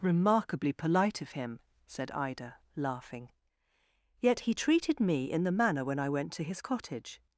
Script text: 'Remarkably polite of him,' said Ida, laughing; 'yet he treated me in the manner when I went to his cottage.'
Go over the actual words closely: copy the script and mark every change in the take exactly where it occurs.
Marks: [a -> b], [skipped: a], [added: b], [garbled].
'Remarkably polite of him,' said Ida, laughing; 'yet he treated me in the manner when I went to his cottage.'